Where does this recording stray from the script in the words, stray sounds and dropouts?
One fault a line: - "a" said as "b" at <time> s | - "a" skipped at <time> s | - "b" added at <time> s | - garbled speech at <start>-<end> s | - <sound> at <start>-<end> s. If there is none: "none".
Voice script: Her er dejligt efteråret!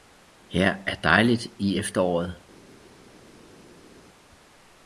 - "i" added at 1.6 s